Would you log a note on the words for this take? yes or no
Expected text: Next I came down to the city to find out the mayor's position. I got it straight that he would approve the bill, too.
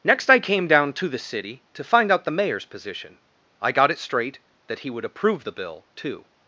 no